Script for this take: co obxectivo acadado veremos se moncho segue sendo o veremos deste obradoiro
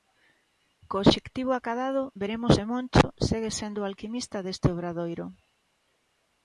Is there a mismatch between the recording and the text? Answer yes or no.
yes